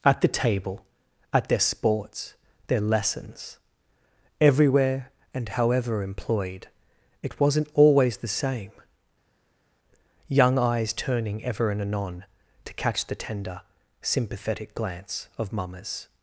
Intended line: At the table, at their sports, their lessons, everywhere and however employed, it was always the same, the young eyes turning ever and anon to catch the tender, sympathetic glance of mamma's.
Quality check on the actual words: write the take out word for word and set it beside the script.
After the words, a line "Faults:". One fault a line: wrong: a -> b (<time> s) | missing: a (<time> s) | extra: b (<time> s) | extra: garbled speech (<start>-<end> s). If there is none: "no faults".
At the table, at their sports, their lessons, everywhere and however employed, it wasn't always the same, young eyes turning ever and anon to catch the tender, sympathetic glance of mamma's.
Faults:
wrong: was -> wasn't (7.4 s)
missing: the (8.7 s)